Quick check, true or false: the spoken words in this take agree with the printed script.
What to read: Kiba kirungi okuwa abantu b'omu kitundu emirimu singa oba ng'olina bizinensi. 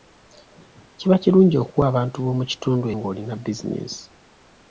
false